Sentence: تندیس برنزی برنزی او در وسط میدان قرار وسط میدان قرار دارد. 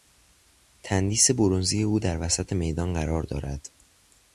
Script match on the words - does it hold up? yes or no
no